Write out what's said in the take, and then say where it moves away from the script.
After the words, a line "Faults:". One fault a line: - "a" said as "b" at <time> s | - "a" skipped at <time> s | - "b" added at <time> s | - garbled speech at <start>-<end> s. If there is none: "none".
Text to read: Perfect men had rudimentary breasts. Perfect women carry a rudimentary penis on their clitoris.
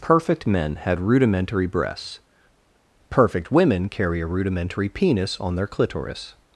Perfect men had rudimentary breasts. Perfect women carry a rudimentary penis on their clitoris.
Faults:
none